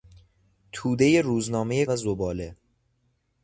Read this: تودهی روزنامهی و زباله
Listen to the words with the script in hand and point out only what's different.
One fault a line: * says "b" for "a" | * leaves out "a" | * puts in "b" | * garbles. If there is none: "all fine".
all fine